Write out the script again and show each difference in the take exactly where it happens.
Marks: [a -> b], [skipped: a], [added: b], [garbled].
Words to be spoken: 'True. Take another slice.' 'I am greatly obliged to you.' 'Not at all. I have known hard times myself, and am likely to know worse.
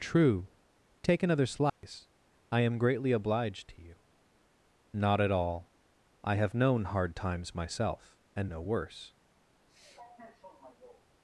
'True. Take another slice.' 'I am greatly obliged to you.' 'Not at all. I have known hard times myself, and [skipped: am likely to] know worse.